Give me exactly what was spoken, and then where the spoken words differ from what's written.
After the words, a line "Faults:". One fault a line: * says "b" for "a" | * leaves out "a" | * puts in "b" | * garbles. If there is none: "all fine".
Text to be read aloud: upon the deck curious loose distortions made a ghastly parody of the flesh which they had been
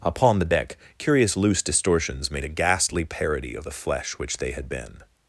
upon the deck curious loose distortions made a ghastly parody of the flesh which they had been
Faults:
all fine